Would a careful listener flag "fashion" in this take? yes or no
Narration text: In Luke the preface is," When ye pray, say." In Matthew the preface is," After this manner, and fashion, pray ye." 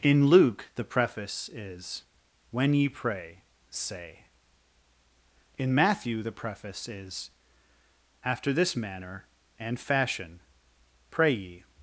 no